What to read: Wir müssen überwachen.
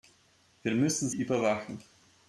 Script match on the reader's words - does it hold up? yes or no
yes